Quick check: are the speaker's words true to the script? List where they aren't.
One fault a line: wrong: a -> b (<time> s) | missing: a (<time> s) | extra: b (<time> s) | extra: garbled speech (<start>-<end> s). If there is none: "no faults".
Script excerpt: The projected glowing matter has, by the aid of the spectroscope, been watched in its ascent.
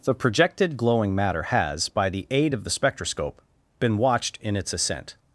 no faults